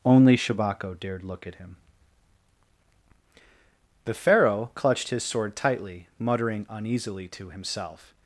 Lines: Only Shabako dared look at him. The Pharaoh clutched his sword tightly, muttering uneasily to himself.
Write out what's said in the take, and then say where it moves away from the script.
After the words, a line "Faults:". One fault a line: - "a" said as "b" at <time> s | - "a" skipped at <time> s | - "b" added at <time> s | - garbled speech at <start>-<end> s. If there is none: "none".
Only Shabako dared look at him. The Pharaoh clutched his sword tightly, muttering uneasily to himself.
Faults:
none